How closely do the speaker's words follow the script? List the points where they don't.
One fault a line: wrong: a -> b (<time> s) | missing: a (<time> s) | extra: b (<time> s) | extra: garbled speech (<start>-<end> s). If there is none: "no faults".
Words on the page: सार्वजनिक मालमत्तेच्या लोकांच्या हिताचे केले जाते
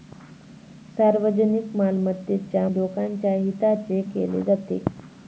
no faults